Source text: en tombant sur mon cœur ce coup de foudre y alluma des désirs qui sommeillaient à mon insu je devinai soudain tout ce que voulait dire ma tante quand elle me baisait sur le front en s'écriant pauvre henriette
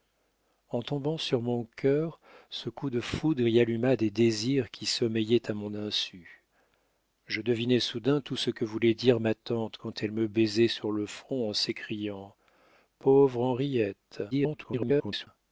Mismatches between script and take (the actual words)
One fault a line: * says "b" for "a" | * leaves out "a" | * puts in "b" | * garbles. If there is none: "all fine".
* garbles